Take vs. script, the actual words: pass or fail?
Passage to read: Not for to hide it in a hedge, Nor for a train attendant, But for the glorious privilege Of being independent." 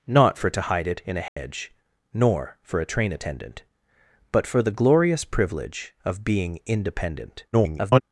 fail